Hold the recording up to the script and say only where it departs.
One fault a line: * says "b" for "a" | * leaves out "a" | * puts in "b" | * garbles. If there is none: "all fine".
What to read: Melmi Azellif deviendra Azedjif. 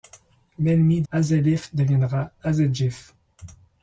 all fine